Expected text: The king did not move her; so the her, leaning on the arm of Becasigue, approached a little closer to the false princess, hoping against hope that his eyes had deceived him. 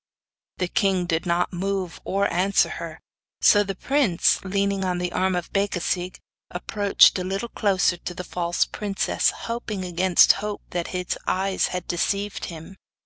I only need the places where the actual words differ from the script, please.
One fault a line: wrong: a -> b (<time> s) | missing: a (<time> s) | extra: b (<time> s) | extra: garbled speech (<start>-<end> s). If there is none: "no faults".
extra: or answer (2.0 s)
wrong: her -> prince (3.8 s)